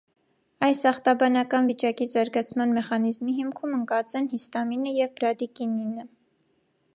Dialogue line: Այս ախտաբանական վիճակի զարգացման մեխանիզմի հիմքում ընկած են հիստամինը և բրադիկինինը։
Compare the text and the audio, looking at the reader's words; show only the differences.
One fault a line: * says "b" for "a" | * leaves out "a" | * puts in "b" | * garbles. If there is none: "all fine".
all fine